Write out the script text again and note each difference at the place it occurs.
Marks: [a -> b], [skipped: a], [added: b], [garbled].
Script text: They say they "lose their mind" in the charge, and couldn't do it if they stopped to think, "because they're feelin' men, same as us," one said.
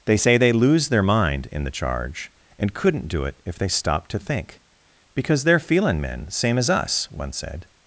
They say they "lose their mind" in the charge, and couldn't do it if they stopped to think, "because they're feelin' men, same as us," one said.